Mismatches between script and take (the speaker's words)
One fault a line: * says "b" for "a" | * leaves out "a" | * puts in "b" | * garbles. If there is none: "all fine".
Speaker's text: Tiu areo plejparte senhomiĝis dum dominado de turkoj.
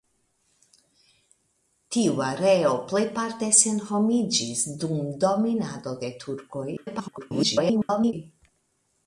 * garbles